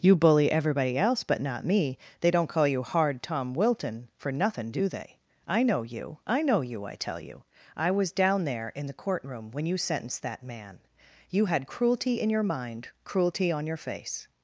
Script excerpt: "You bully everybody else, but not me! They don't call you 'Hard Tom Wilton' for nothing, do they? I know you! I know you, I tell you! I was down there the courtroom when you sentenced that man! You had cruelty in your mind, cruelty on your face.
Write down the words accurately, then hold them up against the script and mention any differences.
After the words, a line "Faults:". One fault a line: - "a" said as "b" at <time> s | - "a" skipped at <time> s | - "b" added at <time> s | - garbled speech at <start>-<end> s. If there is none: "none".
"You bully everybody else, but not me! They don't call you 'Hard Tom Wilton' for nothing, do they? I know you! I know you, I tell you! I was down there in the courtroom when you sentenced that man! You had cruelty in your mind, cruelty on your face.
Faults:
- "in" added at 8.7 s